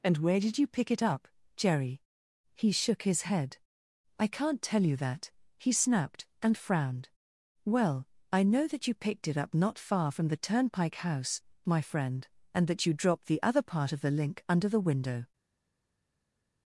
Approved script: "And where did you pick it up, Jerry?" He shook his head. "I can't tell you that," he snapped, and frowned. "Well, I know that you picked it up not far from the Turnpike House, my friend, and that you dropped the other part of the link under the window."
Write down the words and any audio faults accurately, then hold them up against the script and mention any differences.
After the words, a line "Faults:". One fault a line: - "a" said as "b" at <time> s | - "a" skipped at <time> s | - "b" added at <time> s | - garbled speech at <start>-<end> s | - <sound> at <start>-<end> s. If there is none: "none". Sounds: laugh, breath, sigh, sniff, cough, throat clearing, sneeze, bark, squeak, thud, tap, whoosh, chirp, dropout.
"And where did you pick it up, Jerry?" He shook his head. "I can't tell you that," he snapped, and frowned. "Well, I know that you picked it up not far from the Turnpike House, my friend, and that you dropped the other part of the link under the window."
Faults:
none